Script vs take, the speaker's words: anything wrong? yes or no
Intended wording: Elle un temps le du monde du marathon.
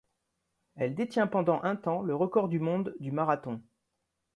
yes